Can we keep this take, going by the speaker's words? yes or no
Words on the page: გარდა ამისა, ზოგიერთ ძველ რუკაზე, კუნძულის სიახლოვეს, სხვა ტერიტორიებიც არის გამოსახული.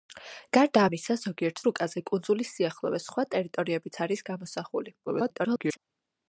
no